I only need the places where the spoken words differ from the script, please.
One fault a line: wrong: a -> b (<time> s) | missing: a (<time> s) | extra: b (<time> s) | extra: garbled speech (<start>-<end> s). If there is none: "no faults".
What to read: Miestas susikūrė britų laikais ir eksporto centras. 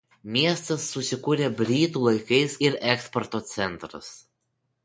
no faults